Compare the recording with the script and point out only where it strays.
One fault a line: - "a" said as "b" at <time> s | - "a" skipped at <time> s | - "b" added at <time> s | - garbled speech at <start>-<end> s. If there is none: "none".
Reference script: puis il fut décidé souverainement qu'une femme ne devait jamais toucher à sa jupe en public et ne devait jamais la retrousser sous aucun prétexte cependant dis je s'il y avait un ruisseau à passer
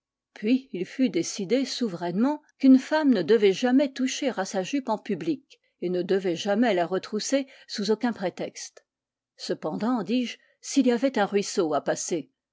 none